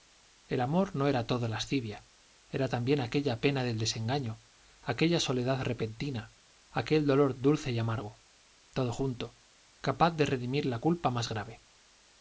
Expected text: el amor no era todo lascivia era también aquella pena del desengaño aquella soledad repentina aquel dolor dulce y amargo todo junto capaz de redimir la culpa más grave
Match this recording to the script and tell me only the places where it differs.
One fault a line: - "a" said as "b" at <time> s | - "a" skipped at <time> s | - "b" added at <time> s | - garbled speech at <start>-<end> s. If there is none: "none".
none